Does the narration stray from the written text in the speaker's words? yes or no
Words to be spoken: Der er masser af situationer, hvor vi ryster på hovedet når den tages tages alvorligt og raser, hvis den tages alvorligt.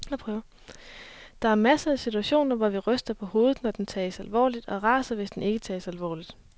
yes